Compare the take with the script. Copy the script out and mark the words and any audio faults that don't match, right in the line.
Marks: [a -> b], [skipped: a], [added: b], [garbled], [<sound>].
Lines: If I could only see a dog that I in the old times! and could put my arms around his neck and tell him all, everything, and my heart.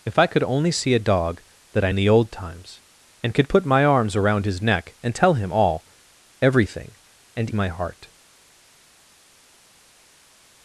If I could only see a dog that I in the old times! and could put my arms around his neck and tell him all, everything, and my heart.